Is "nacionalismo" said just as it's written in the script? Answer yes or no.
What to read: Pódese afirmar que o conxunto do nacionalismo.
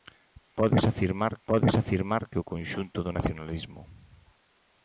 yes